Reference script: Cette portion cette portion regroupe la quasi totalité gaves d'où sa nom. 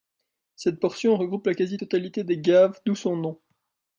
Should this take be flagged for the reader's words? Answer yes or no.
yes